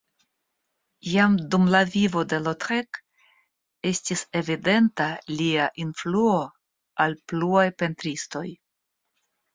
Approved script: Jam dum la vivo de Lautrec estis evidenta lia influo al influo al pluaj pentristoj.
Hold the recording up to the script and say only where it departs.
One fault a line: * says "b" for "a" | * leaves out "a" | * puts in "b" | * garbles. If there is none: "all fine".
* leaves out "influo al"